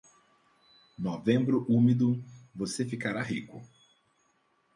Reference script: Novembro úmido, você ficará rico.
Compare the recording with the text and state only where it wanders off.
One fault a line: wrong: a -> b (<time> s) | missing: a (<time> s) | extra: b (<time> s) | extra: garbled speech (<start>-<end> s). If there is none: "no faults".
no faults